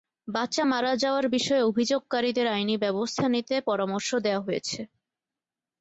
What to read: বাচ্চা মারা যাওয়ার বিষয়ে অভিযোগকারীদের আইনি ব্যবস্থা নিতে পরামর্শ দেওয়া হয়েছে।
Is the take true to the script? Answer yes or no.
yes